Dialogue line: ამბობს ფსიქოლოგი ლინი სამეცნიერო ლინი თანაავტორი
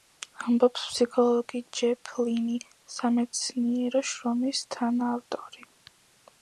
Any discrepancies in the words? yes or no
yes